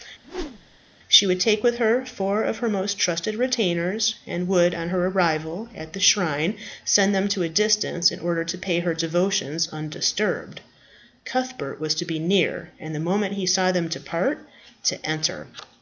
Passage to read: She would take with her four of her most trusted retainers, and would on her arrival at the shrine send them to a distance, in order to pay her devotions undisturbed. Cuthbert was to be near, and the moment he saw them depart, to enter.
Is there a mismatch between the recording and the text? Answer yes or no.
no